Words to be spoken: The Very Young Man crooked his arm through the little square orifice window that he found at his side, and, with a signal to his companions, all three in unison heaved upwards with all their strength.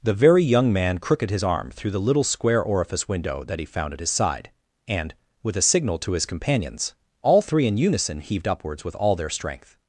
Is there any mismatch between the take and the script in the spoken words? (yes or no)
no